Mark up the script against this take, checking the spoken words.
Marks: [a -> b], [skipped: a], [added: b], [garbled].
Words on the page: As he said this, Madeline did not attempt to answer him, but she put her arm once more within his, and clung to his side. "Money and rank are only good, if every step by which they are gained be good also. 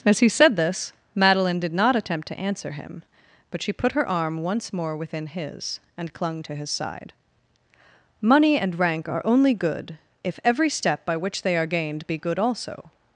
As he said this, Madeline did not attempt to answer him, but she put her arm once more within his, and clung to his side. "Money and rank are only good, if every step by which they are gained be good also.